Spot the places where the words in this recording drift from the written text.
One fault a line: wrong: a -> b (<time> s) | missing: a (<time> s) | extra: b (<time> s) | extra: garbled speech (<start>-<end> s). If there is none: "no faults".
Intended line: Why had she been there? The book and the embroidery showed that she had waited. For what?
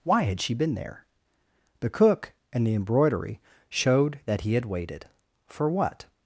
wrong: book -> cook (1.9 s)
wrong: she -> he (4.4 s)